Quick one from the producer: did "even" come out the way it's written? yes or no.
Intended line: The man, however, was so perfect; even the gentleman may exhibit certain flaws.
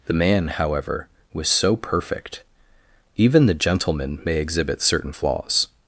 yes